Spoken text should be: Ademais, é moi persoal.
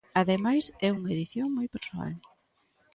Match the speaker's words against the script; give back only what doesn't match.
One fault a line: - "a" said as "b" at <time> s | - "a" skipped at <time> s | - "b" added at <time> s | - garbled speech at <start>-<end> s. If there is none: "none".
- "unha edición" added at 1.0 s